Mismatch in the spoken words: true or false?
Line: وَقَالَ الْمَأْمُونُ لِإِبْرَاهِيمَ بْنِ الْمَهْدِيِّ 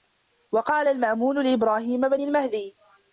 false